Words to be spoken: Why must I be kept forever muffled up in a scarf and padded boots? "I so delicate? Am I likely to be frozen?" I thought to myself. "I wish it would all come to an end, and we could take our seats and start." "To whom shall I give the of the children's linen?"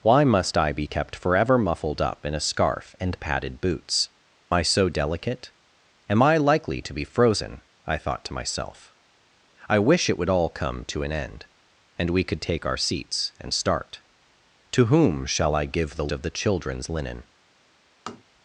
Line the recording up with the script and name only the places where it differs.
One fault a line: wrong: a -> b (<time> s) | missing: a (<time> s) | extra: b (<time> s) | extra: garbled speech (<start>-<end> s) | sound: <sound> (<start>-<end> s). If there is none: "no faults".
sound: tap (18.1-18.2 s)